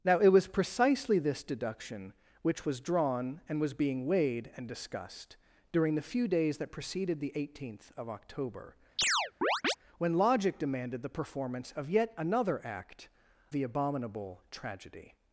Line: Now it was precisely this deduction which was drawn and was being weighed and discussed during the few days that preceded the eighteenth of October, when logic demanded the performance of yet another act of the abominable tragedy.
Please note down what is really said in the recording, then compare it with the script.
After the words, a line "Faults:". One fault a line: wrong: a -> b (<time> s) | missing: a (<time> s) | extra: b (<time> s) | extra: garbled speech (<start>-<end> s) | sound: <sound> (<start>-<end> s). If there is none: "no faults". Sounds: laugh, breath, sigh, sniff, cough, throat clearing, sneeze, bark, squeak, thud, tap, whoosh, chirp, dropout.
Now it was precisely this deduction which was drawn and was being weighed and discussed during the few days that preceded the eighteenth of October, when logic demanded the performance of yet another act the abominable tragedy.
Faults:
sound: chirp (9.0-9.8 s)
missing: of (13.1 s)